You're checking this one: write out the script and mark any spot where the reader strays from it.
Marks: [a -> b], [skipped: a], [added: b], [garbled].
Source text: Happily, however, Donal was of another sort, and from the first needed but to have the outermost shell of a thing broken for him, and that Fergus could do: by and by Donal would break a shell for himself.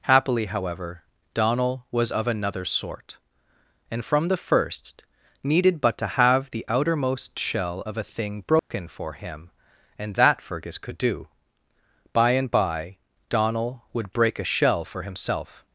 Happily, however, Donal was of another sort, and from the first needed but to have the outermost shell of a thing broken for him, and that Fergus could do: by and by Donal would break a shell for himself.